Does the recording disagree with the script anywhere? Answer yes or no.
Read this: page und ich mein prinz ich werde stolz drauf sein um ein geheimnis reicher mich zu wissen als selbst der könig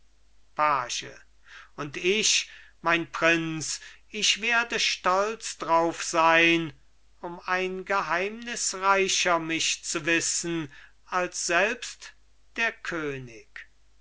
no